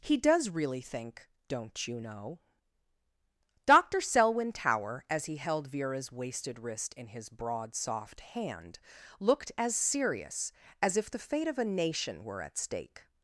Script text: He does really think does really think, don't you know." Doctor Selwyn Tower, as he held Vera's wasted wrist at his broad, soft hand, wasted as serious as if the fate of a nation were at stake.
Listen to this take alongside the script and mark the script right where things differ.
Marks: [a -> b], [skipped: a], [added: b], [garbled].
He does really think [skipped: does really think,] don't you know." Doctor Selwyn Tower, as he held Vera's wasted wrist [at -> in] his broad, soft hand, [wasted -> looked] as serious as if the fate of a nation were at stake.